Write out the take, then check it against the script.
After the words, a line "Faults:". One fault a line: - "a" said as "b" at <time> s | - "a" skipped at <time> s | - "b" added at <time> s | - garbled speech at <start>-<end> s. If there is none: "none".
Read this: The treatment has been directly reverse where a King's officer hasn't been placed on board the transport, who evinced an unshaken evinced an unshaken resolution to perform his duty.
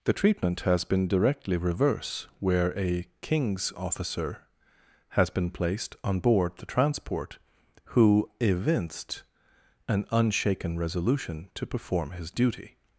The treatment has been directly reverse where a King's officer has been placed on board the transport, who evinced an unshaken resolution to perform his duty.
Faults:
- "hasn't" said as "has" at 5.1 s
- "evinced an unshaken" skipped at 10.8 s